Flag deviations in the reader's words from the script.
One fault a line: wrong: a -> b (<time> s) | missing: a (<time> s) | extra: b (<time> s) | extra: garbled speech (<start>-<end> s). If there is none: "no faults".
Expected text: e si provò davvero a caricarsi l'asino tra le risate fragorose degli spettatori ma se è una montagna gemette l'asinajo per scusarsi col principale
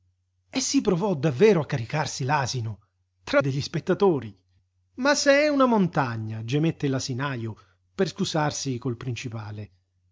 missing: le risate fragorose (3.4 s)